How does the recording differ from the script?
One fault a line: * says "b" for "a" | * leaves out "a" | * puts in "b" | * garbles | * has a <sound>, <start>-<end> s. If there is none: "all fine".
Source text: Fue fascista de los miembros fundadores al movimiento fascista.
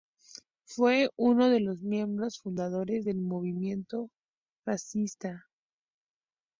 * says "uno" for "fascista"
* says "del" for "al"